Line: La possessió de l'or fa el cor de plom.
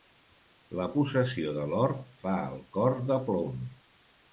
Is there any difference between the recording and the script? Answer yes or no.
no